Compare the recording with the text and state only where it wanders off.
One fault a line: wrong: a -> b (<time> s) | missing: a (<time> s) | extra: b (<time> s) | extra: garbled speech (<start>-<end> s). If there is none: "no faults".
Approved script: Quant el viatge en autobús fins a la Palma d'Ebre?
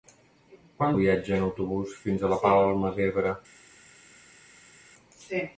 no faults